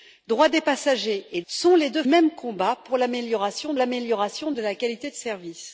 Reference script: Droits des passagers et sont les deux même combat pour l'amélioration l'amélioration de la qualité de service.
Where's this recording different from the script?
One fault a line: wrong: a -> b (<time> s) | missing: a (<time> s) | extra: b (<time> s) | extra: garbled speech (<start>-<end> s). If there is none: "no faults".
no faults